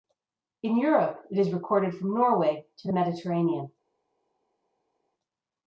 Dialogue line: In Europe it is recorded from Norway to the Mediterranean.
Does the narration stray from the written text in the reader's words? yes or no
no